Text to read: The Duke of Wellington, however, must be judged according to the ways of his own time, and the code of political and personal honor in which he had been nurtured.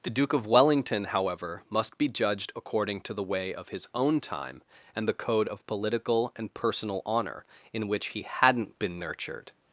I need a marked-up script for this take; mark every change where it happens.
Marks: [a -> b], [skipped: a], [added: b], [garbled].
The Duke of Wellington, however, must be judged according to the [ways -> way] of his own time, and the code of political and personal honor in which he [had -> hadn't] been nurtured.